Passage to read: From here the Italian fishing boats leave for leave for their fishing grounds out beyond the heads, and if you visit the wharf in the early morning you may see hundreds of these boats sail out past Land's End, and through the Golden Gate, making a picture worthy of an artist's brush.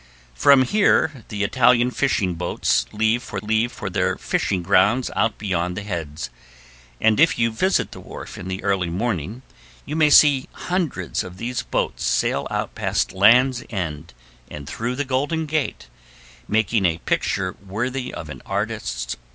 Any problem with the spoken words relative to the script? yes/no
no